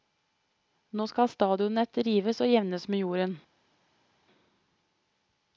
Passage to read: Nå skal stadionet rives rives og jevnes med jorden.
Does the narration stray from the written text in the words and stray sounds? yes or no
yes